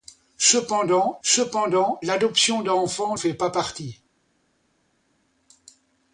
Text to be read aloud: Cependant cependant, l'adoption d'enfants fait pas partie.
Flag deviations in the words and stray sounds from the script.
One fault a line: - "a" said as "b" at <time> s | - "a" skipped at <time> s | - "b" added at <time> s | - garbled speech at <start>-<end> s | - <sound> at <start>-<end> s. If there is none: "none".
none